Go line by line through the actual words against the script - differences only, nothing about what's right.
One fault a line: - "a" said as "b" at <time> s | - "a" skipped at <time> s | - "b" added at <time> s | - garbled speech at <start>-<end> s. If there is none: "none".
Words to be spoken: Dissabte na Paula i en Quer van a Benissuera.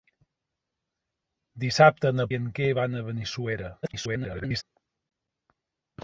- "Paula" skipped at 2.3 s
- garbled speech at 3.8-4.6 s